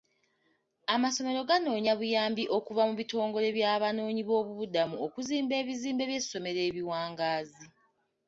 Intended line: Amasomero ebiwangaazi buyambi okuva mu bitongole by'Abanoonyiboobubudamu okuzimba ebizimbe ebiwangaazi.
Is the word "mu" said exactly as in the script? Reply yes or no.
yes